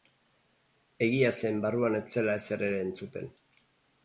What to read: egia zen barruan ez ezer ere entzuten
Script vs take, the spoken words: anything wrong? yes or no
yes